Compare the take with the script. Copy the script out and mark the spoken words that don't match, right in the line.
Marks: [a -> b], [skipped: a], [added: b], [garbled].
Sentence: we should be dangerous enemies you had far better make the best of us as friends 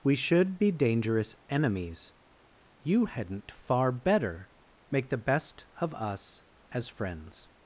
we should be dangerous enemies you [had -> hadn't] far better make the best of us as friends